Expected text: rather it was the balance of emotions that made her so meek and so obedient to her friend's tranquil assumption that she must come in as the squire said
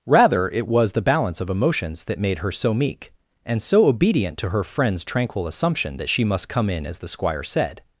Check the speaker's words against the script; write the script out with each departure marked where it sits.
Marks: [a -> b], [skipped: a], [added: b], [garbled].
rather it was the balance of emotions that made her so meek and so obedient to her friend's tranquil assumption that she must come in as the squire said